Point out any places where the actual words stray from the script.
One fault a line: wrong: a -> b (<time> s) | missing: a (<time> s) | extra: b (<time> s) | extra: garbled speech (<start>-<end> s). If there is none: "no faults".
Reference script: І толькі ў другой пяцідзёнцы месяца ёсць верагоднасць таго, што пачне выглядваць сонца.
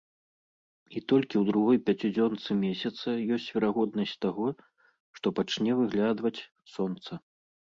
no faults